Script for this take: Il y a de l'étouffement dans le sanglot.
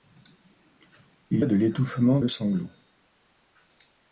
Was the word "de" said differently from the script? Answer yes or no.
no